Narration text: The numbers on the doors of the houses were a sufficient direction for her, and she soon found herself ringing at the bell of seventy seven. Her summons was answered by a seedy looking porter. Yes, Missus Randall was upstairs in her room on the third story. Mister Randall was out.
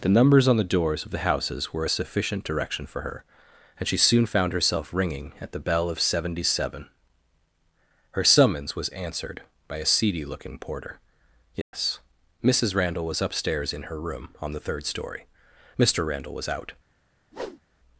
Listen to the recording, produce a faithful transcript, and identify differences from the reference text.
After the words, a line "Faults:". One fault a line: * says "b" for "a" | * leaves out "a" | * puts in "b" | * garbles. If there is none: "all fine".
The numbers on the doors of the houses were a sufficient direction for her, and she soon found herself ringing at the bell of seventy seven. Her summons was answered by a seedy looking porter. Yes, Missus Randall was upstairs in her room on the third story. Mister Randall was out.
Faults:
all fine